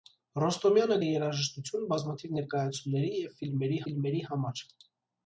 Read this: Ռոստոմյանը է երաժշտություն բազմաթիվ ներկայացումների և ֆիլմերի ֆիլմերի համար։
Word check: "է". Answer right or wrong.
right